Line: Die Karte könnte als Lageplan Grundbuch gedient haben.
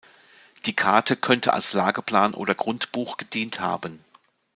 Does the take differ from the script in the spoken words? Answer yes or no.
yes